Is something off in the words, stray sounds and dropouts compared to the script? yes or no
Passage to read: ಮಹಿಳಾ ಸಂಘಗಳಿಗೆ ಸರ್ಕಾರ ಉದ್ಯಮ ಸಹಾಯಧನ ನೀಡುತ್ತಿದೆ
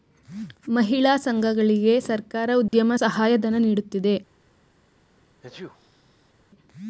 yes